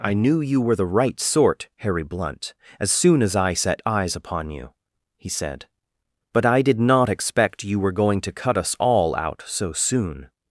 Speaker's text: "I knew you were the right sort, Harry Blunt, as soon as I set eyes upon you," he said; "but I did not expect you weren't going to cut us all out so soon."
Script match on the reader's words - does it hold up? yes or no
no